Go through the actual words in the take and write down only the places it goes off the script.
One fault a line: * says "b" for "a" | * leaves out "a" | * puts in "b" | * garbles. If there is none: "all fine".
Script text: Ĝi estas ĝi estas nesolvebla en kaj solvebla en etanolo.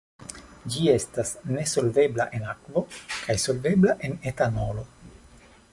* leaves out "ĝi estas"
* puts in "akvo"